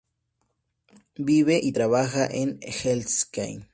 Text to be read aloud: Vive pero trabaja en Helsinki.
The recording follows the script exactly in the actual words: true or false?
false